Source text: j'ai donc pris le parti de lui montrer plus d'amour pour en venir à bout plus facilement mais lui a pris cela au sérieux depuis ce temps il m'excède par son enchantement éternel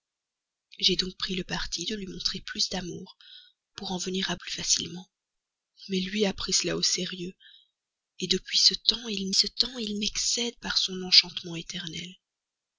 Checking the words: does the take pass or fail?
fail